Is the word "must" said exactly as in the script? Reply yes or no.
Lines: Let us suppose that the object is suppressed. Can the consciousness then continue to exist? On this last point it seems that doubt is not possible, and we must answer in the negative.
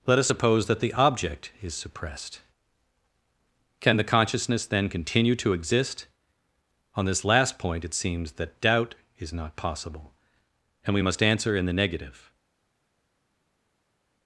yes